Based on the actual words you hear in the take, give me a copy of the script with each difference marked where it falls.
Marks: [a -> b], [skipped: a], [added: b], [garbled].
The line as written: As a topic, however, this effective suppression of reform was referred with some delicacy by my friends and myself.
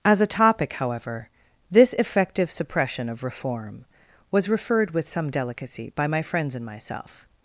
As a topic, however, this effective suppression of reform was referred with some delicacy by my friends and myself.